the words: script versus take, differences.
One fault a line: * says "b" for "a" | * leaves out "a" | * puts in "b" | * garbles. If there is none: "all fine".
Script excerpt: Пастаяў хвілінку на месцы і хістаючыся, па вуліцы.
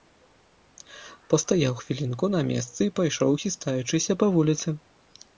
* puts in "пайшоў"